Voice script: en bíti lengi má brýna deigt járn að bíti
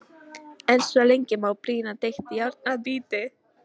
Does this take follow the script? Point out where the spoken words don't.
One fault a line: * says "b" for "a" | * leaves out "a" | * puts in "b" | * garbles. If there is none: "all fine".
* says "svo" for "bíti"